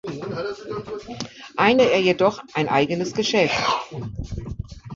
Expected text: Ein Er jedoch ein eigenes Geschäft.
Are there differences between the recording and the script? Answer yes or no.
no